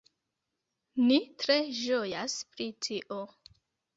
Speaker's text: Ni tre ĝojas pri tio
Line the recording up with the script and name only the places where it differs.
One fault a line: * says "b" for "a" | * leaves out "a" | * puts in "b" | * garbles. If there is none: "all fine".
all fine